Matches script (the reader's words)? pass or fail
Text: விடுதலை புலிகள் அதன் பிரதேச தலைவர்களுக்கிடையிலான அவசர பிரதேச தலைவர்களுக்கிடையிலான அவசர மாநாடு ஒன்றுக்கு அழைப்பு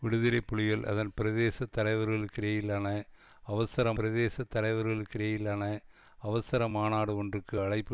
pass